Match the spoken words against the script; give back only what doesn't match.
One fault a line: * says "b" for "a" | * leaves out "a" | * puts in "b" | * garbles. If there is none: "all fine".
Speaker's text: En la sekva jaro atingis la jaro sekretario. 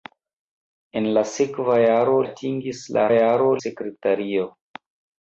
all fine